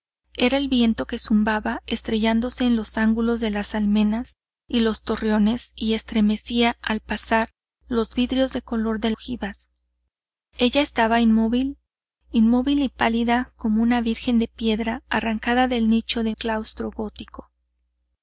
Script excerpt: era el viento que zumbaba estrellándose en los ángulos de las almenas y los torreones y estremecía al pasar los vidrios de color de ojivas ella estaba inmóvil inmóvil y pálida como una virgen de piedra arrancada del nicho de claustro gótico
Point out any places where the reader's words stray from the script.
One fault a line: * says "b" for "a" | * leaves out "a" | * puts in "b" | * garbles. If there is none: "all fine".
all fine